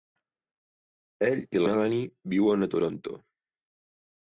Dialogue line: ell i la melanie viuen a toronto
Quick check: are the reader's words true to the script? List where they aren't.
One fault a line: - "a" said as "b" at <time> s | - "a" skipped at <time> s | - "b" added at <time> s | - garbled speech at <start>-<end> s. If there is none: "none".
- "la" skipped at 1.6 s